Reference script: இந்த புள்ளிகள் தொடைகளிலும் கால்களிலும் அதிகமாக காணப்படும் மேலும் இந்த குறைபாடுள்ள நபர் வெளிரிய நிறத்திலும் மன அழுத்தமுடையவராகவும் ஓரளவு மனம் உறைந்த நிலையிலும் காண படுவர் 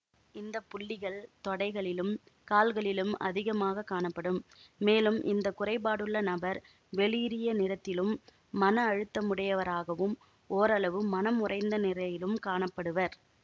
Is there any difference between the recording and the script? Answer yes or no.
no